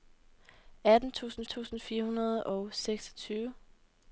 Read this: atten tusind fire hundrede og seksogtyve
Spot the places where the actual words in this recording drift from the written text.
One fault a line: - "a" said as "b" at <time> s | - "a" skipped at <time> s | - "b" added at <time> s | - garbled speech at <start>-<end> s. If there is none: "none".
- "tusind" added at 1.5 s